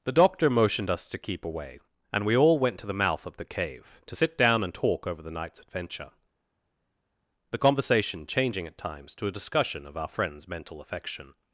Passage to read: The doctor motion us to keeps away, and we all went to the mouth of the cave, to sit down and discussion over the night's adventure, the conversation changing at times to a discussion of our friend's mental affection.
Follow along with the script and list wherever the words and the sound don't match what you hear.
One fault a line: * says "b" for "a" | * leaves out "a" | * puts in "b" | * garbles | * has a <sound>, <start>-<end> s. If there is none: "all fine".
* says "motioned" for "motion"
* says "keep" for "keeps"
* says "talk" for "discussion"